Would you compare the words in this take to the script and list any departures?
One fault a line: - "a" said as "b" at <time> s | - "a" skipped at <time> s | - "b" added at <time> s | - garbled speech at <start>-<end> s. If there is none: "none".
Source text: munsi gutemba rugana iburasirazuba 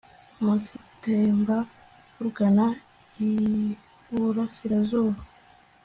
none